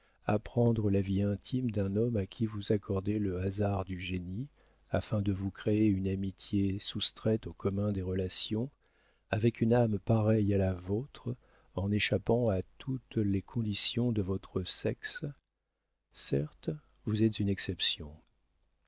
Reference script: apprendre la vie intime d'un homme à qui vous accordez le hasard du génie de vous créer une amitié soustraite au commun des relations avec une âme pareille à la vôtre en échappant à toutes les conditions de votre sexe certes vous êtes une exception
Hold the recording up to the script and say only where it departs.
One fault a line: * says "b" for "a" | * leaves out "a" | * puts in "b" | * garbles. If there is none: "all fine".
* puts in "afin"